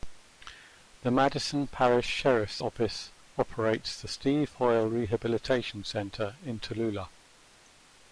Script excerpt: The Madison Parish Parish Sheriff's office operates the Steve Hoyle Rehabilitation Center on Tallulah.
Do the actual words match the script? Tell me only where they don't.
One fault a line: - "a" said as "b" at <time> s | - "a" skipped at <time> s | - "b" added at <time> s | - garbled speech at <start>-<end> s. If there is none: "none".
- "Parish" skipped at 2.1 s
- "on" said as "in" at 6.4 s